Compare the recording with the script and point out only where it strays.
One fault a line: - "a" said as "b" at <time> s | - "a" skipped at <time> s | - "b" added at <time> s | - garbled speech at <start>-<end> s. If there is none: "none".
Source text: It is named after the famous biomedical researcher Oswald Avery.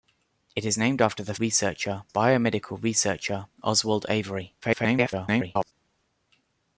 - "famous" said as "researcher" at 1.4 s
- garbled speech at 4.6-5.7 s